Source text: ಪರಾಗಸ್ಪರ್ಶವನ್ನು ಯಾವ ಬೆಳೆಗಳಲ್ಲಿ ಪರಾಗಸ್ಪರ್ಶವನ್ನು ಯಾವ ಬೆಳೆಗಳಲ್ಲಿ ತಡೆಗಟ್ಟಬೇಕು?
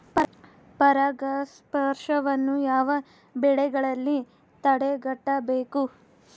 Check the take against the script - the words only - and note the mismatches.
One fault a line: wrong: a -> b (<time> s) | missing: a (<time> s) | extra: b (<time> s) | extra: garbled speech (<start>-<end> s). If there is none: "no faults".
missing: ಪರಾಗಸ್ಪರ್ಶವನ್ನು ಯಾವ ಬೆಳೆಗಳಲ್ಲಿ (4.2 s)